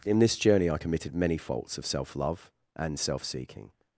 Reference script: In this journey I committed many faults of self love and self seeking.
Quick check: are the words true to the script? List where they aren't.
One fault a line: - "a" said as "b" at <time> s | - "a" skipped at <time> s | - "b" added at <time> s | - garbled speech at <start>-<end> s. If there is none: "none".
none